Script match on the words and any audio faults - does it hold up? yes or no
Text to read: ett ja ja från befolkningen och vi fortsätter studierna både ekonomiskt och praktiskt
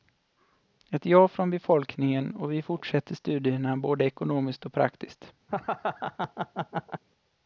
no